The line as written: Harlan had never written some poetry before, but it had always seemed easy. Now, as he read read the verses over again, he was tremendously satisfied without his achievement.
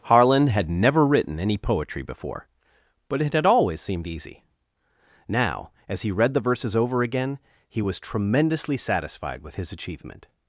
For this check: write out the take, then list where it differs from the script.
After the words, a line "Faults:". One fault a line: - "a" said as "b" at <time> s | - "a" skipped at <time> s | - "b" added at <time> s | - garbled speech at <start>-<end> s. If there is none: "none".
Harlan had never written any poetry before, but it had always seemed easy. Now, as he read the verses over again, he was tremendously satisfied with his achievement.
Faults:
- "some" said as "any" at 1.4 s
- "read" skipped at 6.3 s
- "without" said as "with" at 9.4 s